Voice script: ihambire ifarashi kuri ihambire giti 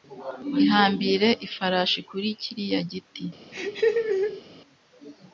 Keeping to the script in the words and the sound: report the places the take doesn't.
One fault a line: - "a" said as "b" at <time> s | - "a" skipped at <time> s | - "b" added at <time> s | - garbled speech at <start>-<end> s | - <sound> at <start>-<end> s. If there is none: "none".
- "ihambire" said as "kiriya" at 2.4 s
- laugh at 3.5-4.4 s